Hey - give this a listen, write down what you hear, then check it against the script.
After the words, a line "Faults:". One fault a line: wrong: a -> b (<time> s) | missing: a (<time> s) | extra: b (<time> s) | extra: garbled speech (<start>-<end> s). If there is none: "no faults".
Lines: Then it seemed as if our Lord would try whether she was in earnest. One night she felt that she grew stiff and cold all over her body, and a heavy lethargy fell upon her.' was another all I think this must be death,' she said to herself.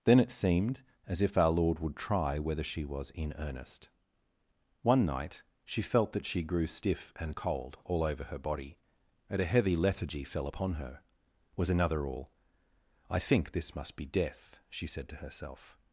Then it seemed as if our Lord would try whether she was in earnest. One night she felt that she grew stiff and cold all over her body, and a heavy lethargy fell upon her.' was another all I think this must be death,' she said to herself.
Faults:
no faults